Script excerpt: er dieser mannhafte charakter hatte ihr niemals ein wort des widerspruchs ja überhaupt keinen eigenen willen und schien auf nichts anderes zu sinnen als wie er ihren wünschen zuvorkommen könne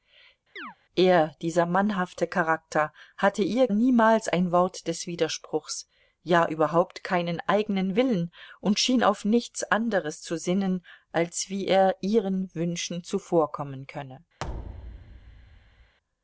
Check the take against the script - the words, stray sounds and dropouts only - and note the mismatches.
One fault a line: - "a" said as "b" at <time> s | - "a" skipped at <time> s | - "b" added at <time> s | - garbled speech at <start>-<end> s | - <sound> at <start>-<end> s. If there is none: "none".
- chirp at 0.6-0.8 s
- thud at 14.4-15.9 s